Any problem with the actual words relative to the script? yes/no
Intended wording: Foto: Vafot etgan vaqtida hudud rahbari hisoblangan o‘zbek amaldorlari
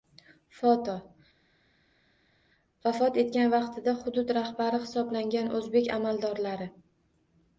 no